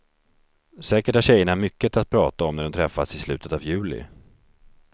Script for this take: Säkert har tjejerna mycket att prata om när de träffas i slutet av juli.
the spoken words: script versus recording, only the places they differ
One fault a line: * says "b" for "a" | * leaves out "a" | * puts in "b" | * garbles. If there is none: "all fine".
all fine